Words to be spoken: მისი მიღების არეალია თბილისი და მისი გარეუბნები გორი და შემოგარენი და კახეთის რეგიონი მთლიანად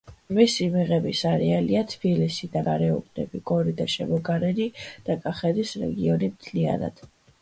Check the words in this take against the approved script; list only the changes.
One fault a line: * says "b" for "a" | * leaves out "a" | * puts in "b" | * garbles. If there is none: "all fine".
* leaves out "მისი"